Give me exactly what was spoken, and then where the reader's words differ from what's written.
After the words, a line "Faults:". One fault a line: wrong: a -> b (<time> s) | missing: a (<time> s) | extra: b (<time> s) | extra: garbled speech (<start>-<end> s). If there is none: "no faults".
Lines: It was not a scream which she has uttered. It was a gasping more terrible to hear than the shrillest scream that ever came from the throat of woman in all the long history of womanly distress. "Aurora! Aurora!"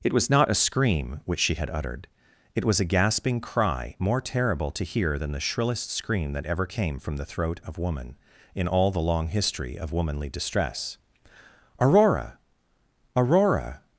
It was not a scream which she had uttered. It was a gasping cry, more terrible to hear than the shrillest scream that ever came from the throat of woman in all the long history of womanly distress. "Aurora! Aurora!"
Faults:
wrong: has -> had (1.5 s)
extra: cry (3.4 s)